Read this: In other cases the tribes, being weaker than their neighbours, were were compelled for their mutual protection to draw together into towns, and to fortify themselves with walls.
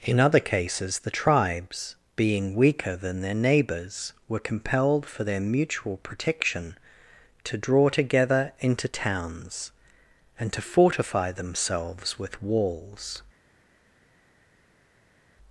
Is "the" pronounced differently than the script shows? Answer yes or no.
no